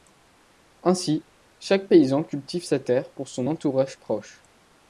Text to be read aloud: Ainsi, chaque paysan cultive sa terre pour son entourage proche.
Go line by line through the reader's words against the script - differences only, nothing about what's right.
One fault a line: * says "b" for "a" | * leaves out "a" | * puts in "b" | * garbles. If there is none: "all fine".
all fine